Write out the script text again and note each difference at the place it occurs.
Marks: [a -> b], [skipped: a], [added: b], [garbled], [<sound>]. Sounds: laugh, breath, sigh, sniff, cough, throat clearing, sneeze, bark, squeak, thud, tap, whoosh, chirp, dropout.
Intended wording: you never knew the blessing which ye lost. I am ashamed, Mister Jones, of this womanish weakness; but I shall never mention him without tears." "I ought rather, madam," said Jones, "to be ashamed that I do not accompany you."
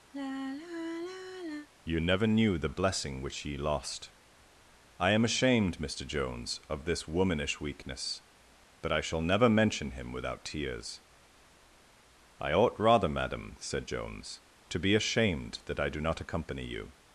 [sigh] you never knew the blessing which ye lost. I am ashamed, Mister Jones, of this womanish weakness; but I shall never mention him without tears." "I ought rather, madam," said Jones, "to be ashamed that I do not accompany you."